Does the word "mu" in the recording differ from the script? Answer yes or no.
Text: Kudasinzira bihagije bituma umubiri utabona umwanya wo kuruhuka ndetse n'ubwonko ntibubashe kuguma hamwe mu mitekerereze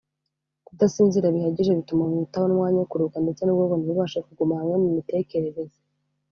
no